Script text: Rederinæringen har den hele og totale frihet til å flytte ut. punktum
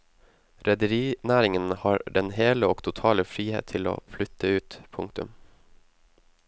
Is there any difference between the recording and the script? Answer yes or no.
no